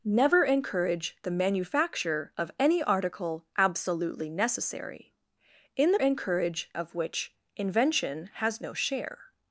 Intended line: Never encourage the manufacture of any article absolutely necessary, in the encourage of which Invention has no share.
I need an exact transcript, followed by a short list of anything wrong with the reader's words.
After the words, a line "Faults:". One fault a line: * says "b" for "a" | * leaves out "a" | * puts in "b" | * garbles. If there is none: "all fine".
Never encourage the manufacture of any article absolutely necessary, in the encourage of which Invention has no share.
Faults:
all fine